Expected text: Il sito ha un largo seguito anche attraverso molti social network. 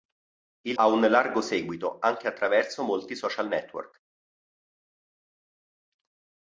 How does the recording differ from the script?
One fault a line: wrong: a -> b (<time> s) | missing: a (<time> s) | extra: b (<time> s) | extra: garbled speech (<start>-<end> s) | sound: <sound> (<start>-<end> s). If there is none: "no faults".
missing: sito (0.8 s)